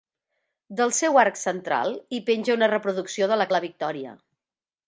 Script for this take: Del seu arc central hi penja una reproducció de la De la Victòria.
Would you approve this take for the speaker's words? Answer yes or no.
yes